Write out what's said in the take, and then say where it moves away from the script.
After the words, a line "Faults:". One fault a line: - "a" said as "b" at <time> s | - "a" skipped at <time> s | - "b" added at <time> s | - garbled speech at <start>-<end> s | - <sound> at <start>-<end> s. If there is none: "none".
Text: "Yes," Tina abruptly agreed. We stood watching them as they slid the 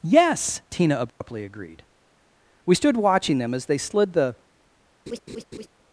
"Yes," Tina abruptly agreed. We stood watching them as they slid the
Faults:
- dropout at 1.1-1.2 s
- laugh at 5.1-5.7 s